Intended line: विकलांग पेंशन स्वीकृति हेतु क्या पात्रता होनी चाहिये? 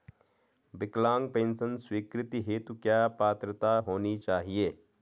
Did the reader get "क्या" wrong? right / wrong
right